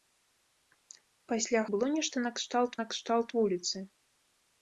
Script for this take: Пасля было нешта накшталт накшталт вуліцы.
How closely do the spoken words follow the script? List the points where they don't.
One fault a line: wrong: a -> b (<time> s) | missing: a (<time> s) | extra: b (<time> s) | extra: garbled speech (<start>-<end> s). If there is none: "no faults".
no faults